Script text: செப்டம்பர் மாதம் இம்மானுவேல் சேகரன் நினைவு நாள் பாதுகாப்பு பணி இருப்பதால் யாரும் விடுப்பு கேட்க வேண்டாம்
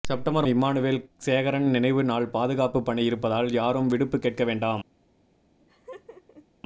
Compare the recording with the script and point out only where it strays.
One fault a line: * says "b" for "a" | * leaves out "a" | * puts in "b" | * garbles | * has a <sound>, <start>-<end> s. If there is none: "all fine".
* leaves out "மாதம்"
* has a laugh, 5.6-6.5 s